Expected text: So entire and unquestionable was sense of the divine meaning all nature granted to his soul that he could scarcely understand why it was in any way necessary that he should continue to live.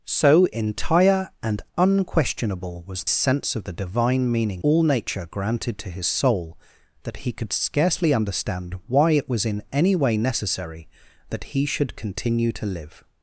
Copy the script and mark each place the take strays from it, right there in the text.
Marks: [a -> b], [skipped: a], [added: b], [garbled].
So entire and unquestionable was sense of the divine meaning all nature granted to his soul that he could scarcely understand why it was in any way necessary that he should continue to live.